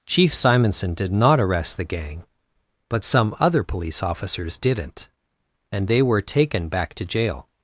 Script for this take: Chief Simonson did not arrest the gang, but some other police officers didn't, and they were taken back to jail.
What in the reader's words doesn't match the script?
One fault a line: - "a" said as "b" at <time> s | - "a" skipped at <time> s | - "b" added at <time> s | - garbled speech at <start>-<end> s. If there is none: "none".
none